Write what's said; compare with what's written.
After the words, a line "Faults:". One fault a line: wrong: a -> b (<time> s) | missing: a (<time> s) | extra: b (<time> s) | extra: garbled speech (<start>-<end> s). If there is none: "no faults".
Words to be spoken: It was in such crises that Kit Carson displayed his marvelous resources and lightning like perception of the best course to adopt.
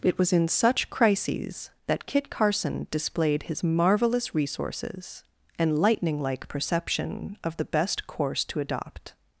It was in such crises that Kit Carson displayed his marvelous resources and lightning like perception of the best course to adopt.
Faults:
no faults